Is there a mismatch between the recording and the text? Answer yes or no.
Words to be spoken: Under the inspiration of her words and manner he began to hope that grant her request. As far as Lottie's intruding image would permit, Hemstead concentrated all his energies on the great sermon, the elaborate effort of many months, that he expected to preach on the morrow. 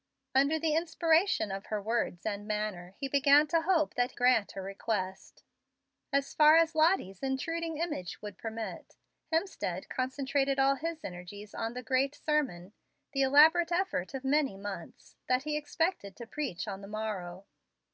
no